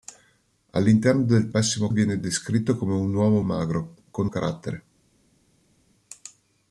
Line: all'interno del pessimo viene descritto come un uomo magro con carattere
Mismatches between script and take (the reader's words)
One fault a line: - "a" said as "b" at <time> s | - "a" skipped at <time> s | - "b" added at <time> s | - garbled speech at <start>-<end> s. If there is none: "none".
none